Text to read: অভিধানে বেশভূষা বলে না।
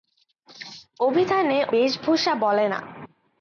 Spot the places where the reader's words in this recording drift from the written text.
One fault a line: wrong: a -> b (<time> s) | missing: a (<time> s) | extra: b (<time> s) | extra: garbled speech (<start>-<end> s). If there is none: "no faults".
no faults